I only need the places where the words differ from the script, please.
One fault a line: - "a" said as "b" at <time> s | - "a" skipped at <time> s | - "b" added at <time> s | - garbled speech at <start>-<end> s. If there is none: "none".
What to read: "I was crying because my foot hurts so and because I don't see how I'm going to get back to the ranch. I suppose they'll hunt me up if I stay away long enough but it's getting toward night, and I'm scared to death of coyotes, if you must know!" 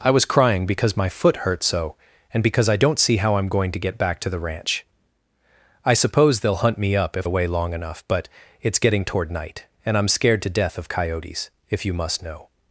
- "I stay" skipped at 7.3 s